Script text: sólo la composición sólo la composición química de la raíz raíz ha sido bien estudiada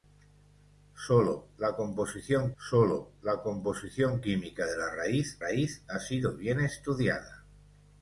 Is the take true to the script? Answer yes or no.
yes